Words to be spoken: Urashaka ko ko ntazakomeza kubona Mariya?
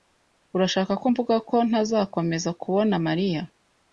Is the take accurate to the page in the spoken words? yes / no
no